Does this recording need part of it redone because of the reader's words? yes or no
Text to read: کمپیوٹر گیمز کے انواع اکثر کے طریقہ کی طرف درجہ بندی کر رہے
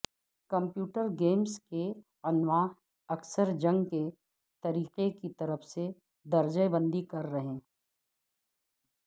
yes